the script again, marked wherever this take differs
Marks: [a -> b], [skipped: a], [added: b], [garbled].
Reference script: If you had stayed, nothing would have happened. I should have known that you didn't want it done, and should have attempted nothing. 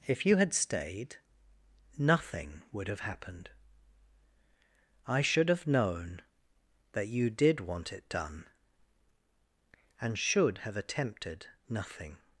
If you had stayed, nothing would have happened. I should have known that you [didn't -> did] want it done, and should have attempted nothing.